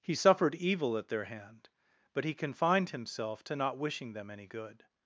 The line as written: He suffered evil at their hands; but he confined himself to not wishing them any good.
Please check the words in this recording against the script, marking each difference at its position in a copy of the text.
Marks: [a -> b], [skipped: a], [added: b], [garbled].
He suffered evil at their [hands; -> hand] but he confined himself to not wishing them any good.